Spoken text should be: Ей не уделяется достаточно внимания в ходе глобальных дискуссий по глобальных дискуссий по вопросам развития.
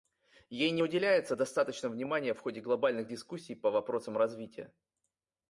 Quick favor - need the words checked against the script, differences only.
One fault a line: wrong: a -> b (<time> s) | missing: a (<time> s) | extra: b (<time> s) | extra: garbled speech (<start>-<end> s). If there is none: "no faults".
missing: глобальных дискуссий по (3.7 s)